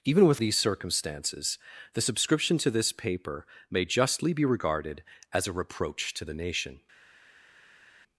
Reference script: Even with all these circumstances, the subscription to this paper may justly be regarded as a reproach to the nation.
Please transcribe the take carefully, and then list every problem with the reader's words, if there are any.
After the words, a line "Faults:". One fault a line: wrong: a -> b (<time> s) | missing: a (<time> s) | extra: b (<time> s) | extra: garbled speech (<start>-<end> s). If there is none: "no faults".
Even with these circumstances, the subscription to this paper may justly be regarded as a reproach to the nation.
Faults:
missing: all (0.4 s)